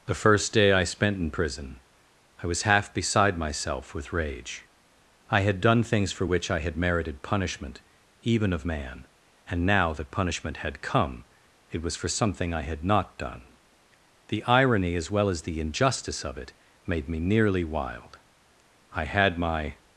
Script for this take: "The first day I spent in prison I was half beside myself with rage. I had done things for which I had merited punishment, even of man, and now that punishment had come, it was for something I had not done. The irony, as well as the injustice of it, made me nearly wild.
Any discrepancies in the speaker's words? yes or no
yes